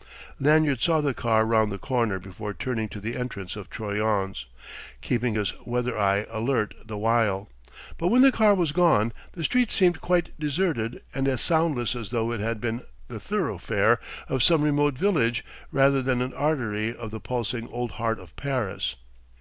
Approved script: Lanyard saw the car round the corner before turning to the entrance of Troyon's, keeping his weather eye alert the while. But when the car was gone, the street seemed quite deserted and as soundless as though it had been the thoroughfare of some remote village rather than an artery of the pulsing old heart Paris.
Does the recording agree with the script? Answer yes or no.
no